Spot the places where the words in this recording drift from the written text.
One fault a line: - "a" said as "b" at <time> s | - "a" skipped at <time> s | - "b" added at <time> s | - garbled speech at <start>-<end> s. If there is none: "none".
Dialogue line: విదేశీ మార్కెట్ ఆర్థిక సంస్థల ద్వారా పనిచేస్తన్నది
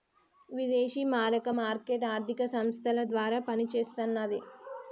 - "మారక" added at 1.1 s